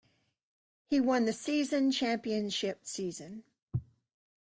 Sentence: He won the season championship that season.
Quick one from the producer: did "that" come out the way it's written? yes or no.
no